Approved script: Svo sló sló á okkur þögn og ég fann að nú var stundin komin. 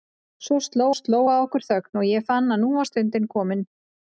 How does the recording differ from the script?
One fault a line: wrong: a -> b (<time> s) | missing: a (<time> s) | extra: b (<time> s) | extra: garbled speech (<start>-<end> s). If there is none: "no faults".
no faults